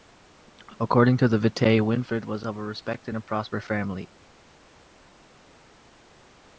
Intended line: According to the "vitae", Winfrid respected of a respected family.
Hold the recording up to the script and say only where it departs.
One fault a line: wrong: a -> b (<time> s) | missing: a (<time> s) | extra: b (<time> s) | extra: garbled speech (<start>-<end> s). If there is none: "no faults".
wrong: respected -> was (2.2 s)
extra: and prosperous (3.1 s)